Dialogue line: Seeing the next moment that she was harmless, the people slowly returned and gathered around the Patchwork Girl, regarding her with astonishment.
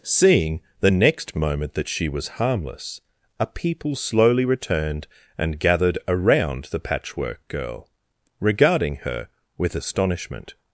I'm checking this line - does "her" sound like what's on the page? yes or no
yes